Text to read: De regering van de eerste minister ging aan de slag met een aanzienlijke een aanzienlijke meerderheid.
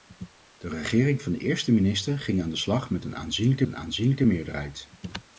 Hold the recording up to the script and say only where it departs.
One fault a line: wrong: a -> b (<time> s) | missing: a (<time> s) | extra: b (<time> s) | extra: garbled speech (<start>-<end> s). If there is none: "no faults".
no faults